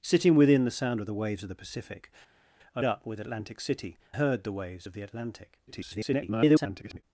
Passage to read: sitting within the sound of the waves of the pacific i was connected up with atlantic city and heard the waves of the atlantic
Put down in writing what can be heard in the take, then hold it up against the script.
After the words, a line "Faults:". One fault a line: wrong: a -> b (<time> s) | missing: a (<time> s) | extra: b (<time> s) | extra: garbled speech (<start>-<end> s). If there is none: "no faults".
sitting within the sound of the waves of the pacific i up with atlantic city heard the waves of the atlantic [garbled]
Faults:
missing: was connected (2.8 s)
missing: and (4.0 s)
extra: garbled speech (5.7-7.0 s)